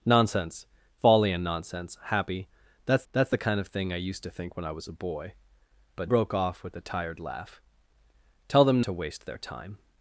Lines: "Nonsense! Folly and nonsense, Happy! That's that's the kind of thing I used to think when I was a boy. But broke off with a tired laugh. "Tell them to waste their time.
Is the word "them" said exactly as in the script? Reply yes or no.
yes